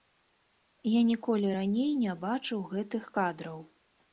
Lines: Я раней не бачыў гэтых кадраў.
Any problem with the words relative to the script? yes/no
yes